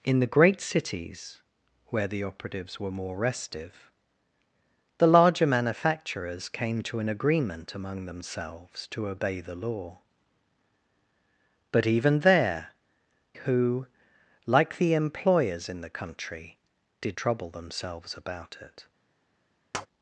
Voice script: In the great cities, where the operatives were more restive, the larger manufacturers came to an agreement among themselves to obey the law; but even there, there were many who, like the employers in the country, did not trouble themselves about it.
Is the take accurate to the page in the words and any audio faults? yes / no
no